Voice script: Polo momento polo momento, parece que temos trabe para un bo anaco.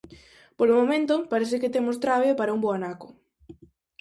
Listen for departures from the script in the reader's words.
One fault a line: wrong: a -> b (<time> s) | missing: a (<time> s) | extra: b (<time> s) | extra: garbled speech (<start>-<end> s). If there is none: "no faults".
missing: polo momento (1.1 s)